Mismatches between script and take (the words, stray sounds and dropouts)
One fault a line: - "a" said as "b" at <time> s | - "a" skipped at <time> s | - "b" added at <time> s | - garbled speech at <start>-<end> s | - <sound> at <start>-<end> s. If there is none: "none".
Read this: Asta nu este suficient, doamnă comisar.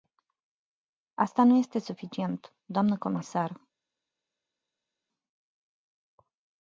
none